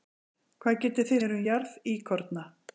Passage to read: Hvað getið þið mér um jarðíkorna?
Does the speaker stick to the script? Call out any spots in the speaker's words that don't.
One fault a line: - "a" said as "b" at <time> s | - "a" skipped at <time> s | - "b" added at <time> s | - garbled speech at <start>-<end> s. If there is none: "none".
none